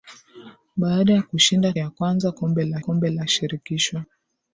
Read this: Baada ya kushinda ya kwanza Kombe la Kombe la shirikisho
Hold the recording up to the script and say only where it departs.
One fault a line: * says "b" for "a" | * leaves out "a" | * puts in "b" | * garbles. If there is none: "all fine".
all fine